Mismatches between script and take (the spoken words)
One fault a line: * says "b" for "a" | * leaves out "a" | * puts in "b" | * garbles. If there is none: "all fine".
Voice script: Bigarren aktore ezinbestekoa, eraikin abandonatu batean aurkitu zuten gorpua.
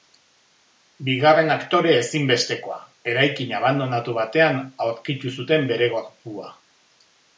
* puts in "bere"